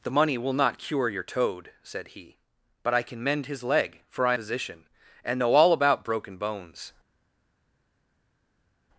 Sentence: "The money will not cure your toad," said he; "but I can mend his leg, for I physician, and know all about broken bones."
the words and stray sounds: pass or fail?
pass